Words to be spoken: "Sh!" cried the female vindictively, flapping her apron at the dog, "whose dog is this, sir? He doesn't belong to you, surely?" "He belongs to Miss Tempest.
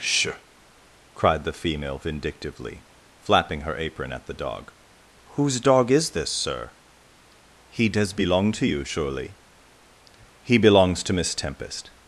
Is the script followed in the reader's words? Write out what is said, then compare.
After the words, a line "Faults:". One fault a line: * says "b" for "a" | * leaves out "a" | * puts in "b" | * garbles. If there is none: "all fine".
"Sh!" cried the female vindictively, flapping her apron at the dog, "whose dog is this, sir? He does belong to you, surely?" "He belongs to Miss Tempest.
Faults:
* says "does" for "doesn't"